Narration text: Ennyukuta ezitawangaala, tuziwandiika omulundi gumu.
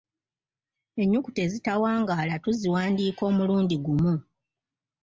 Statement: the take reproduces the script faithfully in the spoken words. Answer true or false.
true